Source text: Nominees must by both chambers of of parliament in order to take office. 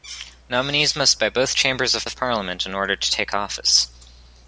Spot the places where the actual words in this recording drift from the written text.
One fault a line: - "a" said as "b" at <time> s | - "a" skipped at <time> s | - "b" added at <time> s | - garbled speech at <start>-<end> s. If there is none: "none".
none